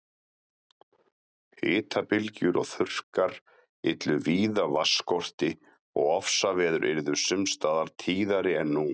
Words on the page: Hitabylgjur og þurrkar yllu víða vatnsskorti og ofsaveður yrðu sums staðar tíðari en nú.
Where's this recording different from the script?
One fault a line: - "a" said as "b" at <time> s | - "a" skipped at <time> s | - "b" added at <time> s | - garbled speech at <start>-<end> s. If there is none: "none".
none